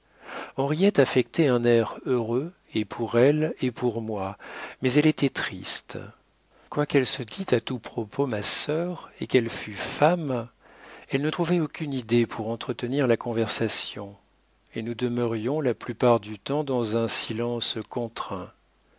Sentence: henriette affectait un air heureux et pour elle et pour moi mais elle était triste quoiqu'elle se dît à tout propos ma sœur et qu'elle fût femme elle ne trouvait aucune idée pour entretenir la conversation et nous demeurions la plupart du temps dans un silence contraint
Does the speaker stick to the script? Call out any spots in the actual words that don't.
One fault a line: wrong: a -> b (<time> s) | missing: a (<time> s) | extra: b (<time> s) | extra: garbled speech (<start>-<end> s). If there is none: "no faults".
no faults